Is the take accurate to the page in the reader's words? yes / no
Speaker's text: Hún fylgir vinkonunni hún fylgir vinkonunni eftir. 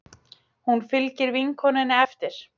no